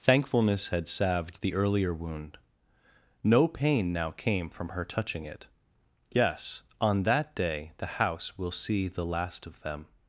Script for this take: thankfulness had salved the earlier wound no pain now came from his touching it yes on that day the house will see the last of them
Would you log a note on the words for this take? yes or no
yes